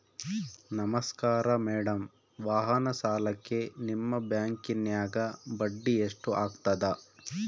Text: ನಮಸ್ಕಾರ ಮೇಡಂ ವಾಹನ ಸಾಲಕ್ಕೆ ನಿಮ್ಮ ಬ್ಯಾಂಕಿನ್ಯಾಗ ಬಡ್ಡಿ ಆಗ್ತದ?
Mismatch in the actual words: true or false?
true